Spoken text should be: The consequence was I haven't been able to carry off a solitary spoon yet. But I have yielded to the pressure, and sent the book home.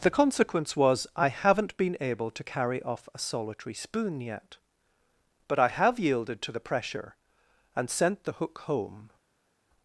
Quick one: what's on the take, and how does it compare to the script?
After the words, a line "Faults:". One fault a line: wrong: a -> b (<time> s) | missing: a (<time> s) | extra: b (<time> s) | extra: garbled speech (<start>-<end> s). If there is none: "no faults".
The consequence was I haven't been able to carry off a solitary spoon yet. But I have yielded to the pressure, and sent the hook home.
Faults:
wrong: book -> hook (8.3 s)